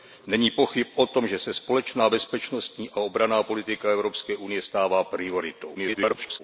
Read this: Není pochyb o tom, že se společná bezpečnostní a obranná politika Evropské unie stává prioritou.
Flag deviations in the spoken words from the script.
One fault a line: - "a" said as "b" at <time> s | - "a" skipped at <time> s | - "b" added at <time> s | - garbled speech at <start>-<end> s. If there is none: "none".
- garbled speech at 5.7-6.4 s